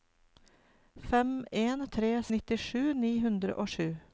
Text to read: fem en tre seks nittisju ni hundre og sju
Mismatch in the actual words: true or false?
true